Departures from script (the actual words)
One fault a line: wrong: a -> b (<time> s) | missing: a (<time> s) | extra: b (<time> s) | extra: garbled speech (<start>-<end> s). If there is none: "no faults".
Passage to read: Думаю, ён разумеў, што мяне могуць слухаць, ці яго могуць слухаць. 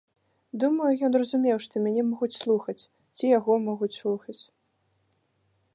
no faults